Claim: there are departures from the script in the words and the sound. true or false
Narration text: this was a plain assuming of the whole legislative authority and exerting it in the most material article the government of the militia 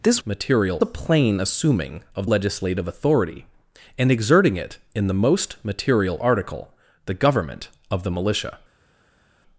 true